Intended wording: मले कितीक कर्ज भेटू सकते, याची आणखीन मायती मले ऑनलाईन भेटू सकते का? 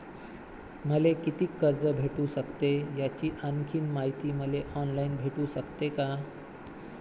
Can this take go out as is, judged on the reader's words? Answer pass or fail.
pass